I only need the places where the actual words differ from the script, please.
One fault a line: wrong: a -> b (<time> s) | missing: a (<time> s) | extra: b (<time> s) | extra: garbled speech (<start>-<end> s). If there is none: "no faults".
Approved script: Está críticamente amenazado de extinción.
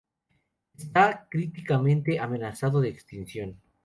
no faults